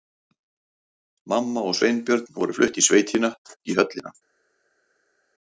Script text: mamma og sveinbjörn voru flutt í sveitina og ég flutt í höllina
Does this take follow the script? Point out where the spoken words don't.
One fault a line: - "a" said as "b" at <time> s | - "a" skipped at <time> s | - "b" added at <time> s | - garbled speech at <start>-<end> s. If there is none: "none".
- "og ég flutt" skipped at 3.3 s